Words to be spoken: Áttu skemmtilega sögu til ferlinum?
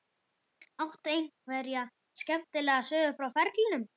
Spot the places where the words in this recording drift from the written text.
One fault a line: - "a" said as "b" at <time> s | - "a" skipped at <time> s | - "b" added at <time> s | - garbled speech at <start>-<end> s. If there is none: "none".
- "einhverja" added at 1.1 s
- "til" said as "frá" at 3.2 s